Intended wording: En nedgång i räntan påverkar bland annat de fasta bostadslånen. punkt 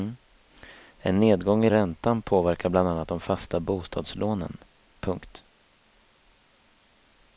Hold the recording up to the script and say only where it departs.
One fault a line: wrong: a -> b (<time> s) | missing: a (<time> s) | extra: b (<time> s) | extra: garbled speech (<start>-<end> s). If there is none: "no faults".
no faults